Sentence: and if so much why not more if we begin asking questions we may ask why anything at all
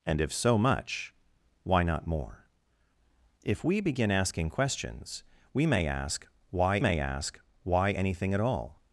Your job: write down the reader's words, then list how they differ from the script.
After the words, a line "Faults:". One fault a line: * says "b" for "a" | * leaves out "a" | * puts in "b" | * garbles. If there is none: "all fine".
and if so much why not more if we begin asking questions we may ask why may ask why anything at all
Faults:
* puts in "may ask why"